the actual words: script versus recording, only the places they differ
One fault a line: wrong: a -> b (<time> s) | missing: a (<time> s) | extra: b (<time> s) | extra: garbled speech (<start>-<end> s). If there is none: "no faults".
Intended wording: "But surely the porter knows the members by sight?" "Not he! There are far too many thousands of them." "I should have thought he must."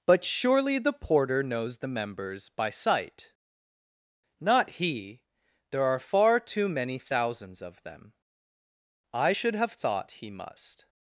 no faults